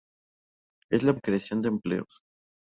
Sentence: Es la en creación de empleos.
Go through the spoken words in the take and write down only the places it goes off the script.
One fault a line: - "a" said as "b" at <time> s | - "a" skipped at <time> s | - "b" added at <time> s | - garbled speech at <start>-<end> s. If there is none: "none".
none